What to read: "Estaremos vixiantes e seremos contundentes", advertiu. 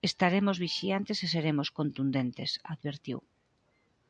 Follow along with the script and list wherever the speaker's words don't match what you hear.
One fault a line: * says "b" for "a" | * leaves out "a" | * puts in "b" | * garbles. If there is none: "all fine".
all fine